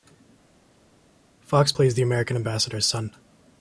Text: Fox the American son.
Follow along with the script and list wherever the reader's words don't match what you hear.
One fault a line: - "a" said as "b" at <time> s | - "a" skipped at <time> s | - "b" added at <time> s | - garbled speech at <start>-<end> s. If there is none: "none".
- "plays" added at 1.7 s
- "ambassador's" added at 2.4 s